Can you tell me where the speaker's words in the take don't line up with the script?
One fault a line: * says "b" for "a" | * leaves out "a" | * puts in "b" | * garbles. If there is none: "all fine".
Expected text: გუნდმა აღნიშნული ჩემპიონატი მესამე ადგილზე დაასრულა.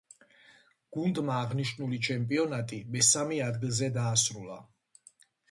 all fine